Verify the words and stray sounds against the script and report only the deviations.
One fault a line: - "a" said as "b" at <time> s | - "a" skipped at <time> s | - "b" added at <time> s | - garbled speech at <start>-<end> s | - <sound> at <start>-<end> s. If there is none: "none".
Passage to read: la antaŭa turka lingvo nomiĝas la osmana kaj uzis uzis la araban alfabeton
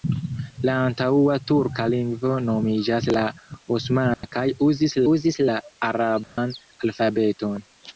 - dropout at 4.1-4.2 s
- dropout at 6.2-6.4 s